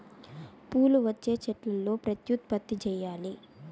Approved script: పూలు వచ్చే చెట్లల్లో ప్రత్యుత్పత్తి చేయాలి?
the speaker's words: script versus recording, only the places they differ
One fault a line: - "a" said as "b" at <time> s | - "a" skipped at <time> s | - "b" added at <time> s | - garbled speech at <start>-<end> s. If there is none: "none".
none